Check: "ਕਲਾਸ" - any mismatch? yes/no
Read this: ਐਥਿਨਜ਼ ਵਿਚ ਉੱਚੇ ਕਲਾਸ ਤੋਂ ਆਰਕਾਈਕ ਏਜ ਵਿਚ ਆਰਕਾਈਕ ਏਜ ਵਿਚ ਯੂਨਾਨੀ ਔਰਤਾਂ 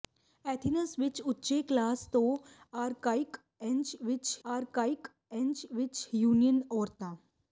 no